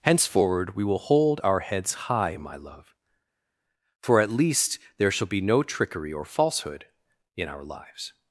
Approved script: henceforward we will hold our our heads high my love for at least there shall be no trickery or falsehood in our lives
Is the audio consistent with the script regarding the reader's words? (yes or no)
no